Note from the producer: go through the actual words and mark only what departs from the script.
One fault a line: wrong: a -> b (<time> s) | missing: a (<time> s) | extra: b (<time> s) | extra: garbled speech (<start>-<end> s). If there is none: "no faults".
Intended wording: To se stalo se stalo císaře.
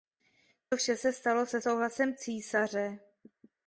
extra: vše (0.8 s)
wrong: stalo -> souhlasem (1.6 s)